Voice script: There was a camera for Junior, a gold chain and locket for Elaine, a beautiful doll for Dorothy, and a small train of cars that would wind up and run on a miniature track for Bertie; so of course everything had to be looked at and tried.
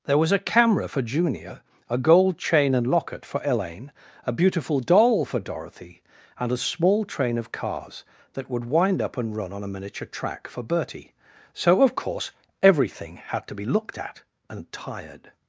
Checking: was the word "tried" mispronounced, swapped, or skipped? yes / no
yes